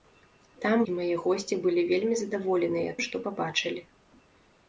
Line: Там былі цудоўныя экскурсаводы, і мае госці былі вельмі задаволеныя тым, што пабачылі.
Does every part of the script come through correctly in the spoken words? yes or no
no